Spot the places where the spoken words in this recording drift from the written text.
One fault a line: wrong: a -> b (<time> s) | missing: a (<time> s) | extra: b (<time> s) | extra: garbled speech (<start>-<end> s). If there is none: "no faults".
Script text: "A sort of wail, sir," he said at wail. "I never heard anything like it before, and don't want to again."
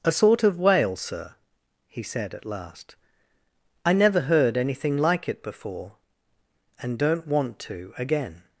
wrong: wail -> last (2.4 s)